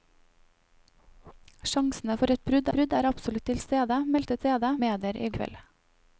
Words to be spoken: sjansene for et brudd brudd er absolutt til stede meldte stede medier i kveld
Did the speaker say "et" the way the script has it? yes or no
yes